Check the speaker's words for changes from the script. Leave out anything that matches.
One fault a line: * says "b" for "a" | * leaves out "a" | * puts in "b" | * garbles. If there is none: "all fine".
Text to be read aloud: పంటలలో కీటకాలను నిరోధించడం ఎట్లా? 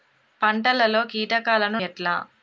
* leaves out "నిరోధించడం"